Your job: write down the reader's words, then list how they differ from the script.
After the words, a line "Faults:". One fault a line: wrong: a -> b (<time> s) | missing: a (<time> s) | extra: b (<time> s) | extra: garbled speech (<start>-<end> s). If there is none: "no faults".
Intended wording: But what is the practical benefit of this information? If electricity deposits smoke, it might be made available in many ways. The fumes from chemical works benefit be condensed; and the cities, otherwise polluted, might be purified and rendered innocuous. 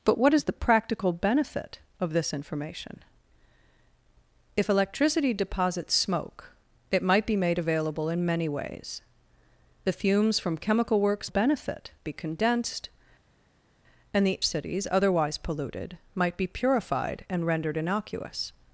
But what is the practical benefit of this information? If electricity deposits smoke, it might be made available in many ways. The fumes from chemical works benefit be condensed; and the cities, otherwise polluted, might be purified and rendered innocuous.
Faults:
no faults